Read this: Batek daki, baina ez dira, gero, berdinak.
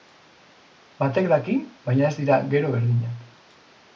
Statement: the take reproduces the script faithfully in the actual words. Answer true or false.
true